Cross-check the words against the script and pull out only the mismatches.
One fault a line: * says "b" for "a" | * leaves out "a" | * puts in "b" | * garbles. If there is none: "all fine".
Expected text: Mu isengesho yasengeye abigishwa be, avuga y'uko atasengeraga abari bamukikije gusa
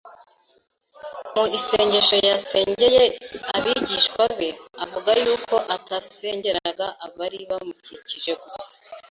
all fine